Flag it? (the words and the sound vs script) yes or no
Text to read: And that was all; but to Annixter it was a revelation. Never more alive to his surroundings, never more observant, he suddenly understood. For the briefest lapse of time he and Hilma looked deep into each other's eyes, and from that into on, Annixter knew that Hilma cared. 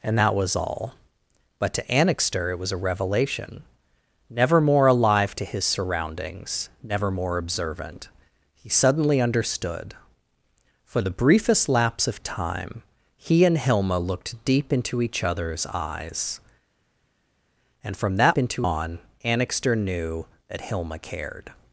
no